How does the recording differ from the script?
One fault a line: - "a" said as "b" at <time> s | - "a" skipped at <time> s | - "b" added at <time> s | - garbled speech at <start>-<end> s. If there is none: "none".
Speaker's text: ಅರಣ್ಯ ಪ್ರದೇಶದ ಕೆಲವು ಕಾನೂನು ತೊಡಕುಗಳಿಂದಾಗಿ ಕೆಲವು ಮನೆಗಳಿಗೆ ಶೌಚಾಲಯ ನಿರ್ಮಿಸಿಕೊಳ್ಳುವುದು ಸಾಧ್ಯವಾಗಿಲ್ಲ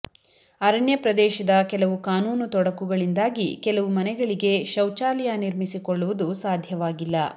none